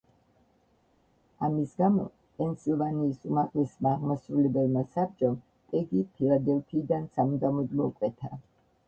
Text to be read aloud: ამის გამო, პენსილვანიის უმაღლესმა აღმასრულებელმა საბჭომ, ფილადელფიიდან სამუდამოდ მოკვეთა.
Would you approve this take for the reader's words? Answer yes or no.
no